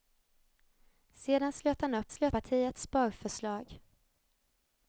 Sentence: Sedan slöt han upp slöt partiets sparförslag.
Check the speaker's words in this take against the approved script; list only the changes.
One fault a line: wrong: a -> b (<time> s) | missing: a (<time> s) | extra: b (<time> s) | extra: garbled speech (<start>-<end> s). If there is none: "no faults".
no faults